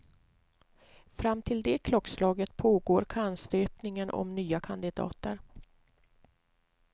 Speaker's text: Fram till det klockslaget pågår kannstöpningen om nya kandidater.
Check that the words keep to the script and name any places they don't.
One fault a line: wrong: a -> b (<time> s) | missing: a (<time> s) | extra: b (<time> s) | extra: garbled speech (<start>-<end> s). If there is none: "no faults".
no faults